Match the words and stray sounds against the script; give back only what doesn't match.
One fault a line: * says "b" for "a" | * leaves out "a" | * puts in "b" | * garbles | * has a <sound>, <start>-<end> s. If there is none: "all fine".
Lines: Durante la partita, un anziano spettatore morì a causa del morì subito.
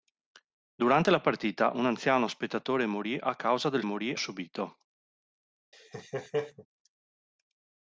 * has a laugh, 5.7-6.7 s